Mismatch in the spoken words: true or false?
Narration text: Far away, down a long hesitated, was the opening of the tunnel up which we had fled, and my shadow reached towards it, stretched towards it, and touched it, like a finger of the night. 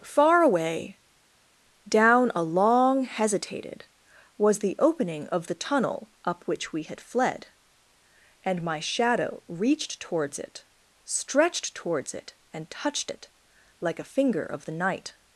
false